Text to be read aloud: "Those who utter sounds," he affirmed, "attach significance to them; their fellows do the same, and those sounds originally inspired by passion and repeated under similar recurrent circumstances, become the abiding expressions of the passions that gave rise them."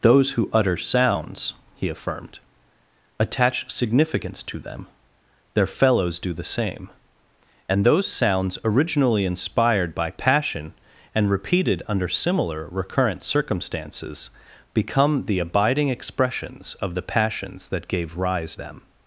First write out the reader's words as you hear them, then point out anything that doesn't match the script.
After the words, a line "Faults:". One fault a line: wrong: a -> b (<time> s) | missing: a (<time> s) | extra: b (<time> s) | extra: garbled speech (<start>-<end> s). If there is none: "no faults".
"Those who utter sounds," he affirmed, "attach significance to them; their fellows do the same, and those sounds originally inspired by passion and repeated under similar recurrent circumstances, become the abiding expressions of the passions that gave rise them."
Faults:
no faults